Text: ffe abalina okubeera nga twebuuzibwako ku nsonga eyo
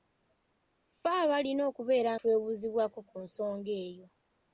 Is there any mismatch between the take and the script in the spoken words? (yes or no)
yes